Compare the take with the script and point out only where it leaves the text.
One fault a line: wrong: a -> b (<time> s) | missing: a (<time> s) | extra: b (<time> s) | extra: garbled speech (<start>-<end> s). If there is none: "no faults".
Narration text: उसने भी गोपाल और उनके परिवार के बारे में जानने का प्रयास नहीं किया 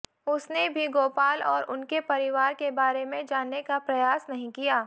no faults